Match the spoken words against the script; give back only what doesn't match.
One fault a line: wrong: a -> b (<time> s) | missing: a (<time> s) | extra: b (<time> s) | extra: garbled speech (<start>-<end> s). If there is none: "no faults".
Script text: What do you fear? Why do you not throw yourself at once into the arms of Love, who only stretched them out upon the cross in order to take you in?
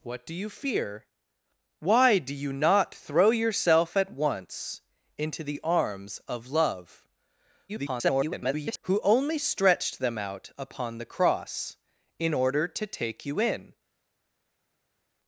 extra: garbled speech (7.7-8.8 s)